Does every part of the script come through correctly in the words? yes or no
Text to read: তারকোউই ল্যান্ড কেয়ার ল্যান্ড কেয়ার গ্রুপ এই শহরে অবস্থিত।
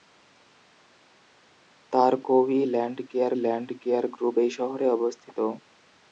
yes